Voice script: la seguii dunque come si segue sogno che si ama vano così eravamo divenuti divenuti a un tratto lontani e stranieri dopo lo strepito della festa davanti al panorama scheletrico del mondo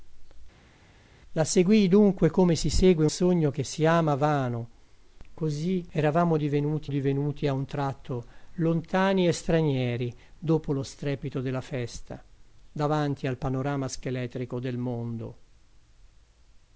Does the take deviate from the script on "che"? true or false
false